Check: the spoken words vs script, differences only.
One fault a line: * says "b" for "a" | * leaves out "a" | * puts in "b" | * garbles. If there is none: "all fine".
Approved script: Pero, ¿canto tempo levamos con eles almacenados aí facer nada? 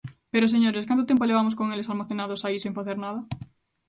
* puts in "señores"
* puts in "sen"